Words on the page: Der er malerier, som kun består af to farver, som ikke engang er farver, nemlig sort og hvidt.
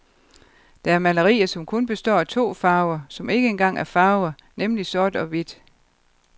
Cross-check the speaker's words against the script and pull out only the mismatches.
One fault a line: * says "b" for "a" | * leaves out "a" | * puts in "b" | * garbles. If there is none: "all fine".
all fine